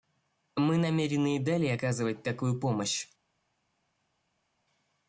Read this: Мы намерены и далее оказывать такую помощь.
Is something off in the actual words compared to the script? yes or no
no